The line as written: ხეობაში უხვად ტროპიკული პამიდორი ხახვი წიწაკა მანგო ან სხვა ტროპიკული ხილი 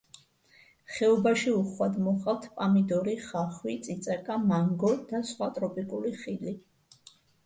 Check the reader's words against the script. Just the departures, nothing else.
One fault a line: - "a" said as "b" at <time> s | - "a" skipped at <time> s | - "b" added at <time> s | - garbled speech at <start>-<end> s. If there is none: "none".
- "ტროპიკული" said as "მოჰყავთ" at 2.0 s
- "ან" said as "და" at 5.1 s